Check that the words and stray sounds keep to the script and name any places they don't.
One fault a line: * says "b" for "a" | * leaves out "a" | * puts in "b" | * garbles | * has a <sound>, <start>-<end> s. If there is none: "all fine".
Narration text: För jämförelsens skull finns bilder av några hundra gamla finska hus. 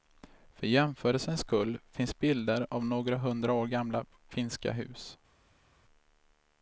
* puts in "år"